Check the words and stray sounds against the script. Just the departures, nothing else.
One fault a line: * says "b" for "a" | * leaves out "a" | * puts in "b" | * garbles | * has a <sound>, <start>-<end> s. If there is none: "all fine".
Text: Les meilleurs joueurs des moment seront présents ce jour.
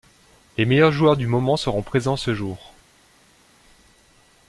* says "du" for "des"